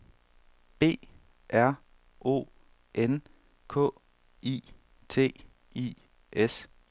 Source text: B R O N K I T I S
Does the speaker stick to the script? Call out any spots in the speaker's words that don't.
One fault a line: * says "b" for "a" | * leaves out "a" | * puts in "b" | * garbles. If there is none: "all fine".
all fine